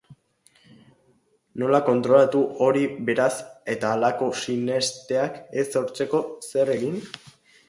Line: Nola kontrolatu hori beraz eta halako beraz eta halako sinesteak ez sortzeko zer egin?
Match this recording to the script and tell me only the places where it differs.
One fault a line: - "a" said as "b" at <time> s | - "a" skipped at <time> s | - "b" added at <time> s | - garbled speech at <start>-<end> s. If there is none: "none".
- "beraz eta halako" skipped at 4.3 s